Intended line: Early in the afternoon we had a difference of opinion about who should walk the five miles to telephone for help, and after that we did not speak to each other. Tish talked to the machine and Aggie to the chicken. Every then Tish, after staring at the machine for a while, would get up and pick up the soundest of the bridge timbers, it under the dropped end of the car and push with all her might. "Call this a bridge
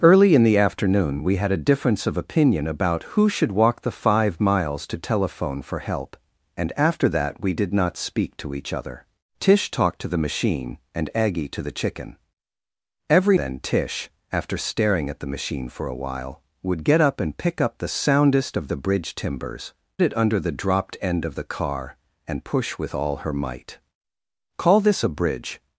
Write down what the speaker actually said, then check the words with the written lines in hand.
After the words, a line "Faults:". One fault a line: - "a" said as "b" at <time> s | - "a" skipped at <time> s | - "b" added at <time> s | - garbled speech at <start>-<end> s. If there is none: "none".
Early in the afternoon we had a difference of opinion about who should walk the five miles to telephone for help, and after that we did not speak to each other. Tish talked to the machine and Aggie to the chicken. Every then Tish, after staring at the machine for a while, would get up and pick up the soundest of the bridge timbers, it under the dropped end of the car and push with all her might. "Call this a bridge
Faults:
none